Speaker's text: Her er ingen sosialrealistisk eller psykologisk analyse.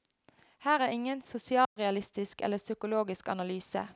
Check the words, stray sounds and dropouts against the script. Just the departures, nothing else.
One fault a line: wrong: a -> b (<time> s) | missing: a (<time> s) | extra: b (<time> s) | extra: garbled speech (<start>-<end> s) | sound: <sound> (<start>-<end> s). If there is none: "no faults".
sound: dropout (1.6-1.8 s)